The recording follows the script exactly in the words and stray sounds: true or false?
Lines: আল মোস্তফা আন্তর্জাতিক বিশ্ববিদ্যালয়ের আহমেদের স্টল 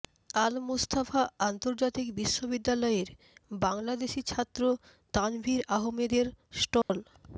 false